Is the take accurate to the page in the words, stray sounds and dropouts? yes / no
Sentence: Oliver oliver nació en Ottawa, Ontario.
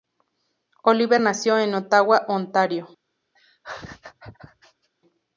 no